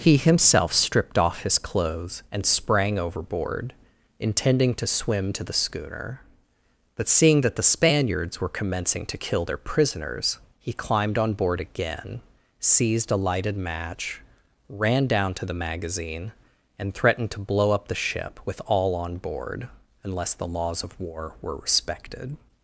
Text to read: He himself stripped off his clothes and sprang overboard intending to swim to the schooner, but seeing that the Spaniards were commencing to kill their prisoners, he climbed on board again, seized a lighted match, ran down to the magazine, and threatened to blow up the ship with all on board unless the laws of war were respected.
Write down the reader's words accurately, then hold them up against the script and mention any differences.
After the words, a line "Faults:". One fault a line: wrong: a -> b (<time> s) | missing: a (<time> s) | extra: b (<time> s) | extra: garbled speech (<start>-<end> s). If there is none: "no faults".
He himself stripped off his clothes and sprang overboard intending to swim to the schooner, but seeing that the Spaniards were commencing to kill their prisoners, he climbed on board again, seized a lighted match, ran down to the magazine, and threatened to blow up the ship with all on board unless the laws of war were respected.
Faults:
no faults